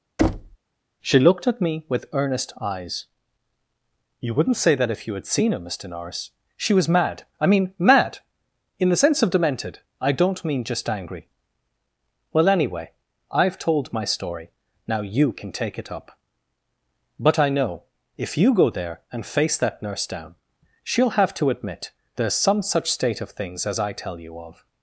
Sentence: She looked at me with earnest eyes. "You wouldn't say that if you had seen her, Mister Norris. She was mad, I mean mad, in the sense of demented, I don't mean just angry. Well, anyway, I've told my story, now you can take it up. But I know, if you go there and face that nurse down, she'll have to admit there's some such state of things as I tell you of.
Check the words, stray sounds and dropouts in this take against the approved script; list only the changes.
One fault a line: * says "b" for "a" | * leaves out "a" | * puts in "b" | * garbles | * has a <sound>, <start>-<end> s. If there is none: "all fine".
* has a thud, 0.2-0.6 s